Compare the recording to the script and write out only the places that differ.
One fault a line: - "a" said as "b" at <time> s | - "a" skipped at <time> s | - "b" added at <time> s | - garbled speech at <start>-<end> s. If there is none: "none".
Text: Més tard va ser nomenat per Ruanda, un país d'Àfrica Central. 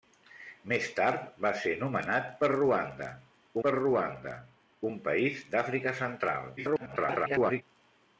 - "per Ruanda" added at 3.6 s
- garbled speech at 6.6-7.6 s